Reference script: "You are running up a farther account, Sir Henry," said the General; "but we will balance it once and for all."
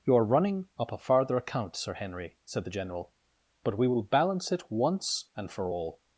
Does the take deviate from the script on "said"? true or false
false